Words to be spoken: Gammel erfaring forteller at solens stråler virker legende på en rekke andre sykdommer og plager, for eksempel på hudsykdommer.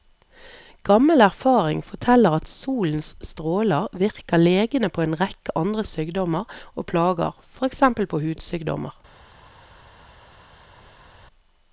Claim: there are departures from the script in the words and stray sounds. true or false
false